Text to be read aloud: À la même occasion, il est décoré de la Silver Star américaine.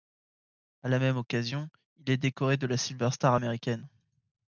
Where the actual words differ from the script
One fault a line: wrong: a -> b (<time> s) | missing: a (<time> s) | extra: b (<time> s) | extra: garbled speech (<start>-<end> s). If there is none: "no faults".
no faults